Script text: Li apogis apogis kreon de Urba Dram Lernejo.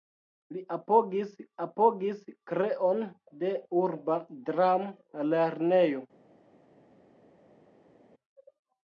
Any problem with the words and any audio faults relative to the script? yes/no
no